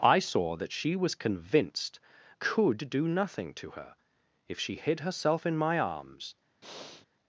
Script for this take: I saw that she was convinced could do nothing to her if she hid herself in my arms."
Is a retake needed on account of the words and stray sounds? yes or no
yes